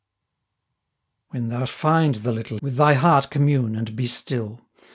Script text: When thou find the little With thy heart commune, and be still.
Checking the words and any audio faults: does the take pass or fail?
pass